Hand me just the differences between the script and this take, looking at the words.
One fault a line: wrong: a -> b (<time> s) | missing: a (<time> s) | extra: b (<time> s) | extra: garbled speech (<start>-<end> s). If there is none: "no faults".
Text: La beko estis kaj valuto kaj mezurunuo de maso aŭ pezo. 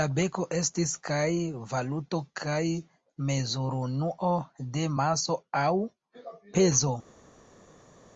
no faults